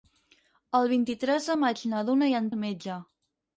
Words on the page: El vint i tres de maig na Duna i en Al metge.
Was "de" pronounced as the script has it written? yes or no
yes